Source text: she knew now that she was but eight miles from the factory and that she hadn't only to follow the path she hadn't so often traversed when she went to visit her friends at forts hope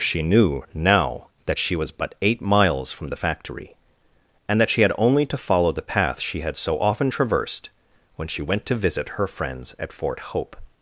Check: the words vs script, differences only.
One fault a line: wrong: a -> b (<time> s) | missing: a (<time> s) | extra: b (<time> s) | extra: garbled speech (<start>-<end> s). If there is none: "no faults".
wrong: hadn't -> had (4.8 s)
wrong: hadn't -> had (6.4 s)
wrong: forts -> fort (9.9 s)